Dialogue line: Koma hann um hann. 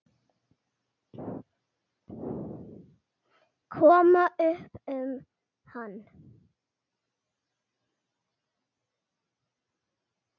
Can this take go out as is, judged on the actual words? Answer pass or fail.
fail